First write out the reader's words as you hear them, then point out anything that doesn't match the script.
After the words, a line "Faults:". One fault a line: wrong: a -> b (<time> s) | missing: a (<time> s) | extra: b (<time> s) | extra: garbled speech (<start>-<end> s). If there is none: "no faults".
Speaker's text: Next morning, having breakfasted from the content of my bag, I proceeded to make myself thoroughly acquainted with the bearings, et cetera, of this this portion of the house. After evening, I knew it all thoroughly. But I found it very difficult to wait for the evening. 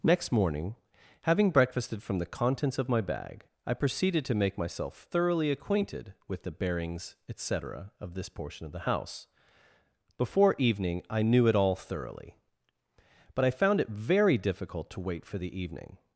Next morning, having breakfasted from the contents of my bag, I proceeded to make myself thoroughly acquainted with the bearings, et cetera, of this portion of the house. Before evening, I knew it all thoroughly. But I found it very difficult to wait for the evening.
Faults:
wrong: content -> contents (2.2 s)
missing: this (8.3 s)
wrong: After -> Before (10.2 s)